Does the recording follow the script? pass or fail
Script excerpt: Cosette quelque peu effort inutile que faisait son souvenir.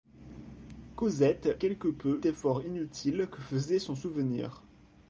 pass